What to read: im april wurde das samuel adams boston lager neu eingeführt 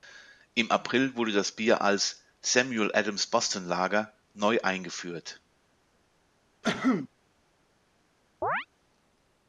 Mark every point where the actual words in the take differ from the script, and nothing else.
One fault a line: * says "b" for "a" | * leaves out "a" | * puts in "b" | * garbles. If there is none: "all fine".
* puts in "bier als"